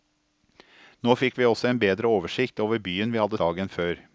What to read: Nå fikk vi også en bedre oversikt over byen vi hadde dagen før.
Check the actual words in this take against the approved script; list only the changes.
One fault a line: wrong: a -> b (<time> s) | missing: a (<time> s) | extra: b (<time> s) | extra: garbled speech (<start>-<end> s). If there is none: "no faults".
no faults